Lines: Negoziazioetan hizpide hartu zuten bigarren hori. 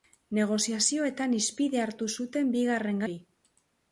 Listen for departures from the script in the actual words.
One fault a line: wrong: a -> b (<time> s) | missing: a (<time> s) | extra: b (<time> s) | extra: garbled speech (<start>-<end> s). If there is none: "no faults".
no faults